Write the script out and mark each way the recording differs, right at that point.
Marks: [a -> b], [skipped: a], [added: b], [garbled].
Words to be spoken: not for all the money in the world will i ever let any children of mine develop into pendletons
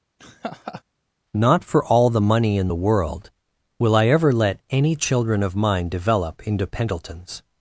not for all the money in the world will i ever let any children of mine develop into pendletons